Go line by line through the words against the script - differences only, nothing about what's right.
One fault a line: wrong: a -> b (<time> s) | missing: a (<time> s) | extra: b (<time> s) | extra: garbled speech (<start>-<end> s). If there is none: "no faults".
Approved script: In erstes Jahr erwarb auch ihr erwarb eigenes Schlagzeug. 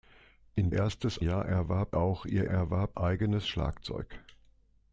no faults